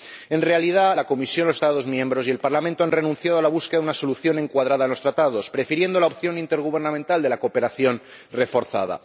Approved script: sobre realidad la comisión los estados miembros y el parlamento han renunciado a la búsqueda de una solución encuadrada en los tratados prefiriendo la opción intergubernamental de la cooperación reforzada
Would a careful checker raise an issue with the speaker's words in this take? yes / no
yes